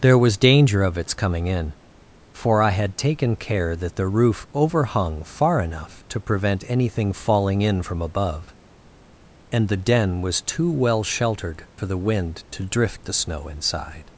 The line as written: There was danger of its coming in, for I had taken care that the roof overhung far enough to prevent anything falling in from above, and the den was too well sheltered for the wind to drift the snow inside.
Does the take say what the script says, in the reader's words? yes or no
yes